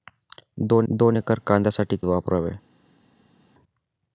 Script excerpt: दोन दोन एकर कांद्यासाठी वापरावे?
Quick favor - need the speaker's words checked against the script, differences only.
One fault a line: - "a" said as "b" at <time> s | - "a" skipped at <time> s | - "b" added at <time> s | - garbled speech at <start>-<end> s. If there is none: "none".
none